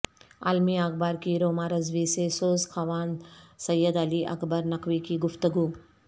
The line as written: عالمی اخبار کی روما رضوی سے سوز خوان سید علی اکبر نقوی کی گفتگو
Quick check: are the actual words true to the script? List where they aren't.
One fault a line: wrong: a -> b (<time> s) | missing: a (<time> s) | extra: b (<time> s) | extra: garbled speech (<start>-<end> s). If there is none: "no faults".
no faults